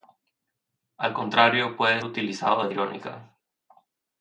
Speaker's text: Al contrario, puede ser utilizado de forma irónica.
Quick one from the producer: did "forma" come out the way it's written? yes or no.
no